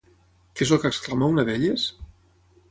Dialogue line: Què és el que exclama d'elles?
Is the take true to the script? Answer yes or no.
no